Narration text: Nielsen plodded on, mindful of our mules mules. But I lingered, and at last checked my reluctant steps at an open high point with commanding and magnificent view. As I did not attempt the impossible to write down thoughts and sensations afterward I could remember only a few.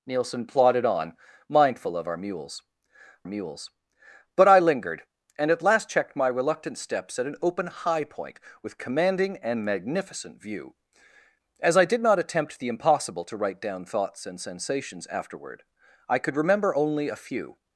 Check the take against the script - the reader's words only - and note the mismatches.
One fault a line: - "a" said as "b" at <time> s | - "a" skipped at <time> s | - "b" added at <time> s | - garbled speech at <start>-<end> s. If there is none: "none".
none